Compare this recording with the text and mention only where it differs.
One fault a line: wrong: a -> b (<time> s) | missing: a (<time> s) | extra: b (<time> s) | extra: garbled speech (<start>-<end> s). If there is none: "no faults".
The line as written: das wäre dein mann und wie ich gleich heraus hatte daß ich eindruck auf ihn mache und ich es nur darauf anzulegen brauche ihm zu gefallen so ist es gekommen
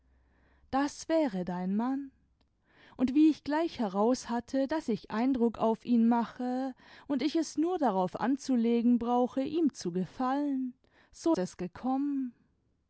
missing: ist (11.3 s)